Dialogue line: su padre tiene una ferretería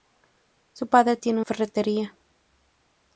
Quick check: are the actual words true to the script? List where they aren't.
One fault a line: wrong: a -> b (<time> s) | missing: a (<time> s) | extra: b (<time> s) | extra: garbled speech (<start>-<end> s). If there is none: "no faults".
missing: una (1.4 s)